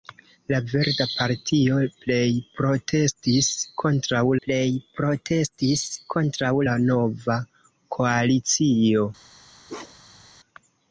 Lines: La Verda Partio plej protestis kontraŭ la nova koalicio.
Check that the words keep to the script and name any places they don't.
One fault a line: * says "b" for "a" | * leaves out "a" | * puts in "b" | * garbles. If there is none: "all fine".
* puts in "plej protestis kontraŭ"